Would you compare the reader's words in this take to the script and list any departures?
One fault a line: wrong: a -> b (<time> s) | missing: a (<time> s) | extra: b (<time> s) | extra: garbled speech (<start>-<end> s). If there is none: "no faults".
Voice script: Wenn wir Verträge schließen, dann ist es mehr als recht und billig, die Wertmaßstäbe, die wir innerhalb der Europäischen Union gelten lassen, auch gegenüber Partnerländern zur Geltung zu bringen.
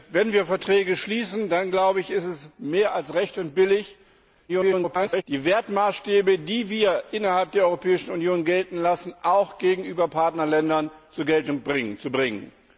extra: garbled speech (4.5-5.2 s)